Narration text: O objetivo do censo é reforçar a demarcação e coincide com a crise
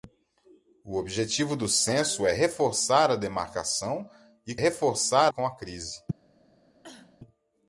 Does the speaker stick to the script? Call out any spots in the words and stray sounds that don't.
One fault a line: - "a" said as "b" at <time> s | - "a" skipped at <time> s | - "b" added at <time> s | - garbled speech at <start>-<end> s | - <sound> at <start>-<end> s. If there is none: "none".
- "coincide" said as "reforçar" at 4.6 s
- cough at 6.8-7.2 s